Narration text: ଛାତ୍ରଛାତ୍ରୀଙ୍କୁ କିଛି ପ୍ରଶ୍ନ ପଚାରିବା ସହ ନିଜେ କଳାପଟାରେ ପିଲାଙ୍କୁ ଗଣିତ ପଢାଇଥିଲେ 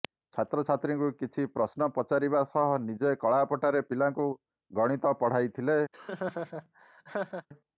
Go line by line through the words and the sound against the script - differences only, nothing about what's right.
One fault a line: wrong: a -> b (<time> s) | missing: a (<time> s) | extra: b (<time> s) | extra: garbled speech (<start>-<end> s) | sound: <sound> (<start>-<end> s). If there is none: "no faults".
sound: laugh (5.9-7.5 s)